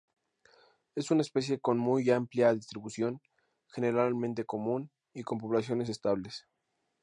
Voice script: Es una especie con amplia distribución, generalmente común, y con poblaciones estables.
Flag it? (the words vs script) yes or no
yes